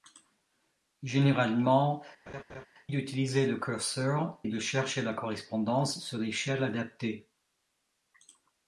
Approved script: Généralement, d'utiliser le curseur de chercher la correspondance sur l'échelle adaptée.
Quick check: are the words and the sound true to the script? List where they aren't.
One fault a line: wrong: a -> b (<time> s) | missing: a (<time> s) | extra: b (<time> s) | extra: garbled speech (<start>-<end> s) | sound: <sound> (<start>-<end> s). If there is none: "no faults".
sound: laugh (2.3-2.7 s)